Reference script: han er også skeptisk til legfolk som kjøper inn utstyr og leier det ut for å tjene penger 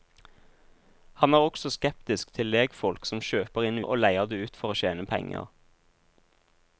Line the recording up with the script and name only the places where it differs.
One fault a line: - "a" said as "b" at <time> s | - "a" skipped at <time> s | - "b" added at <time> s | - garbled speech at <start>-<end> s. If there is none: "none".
- "utstyr" skipped at 3.8 s